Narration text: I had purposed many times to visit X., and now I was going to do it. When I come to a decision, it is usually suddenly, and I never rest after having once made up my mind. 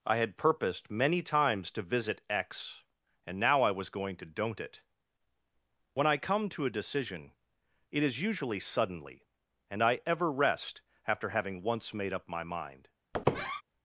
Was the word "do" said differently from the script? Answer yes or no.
yes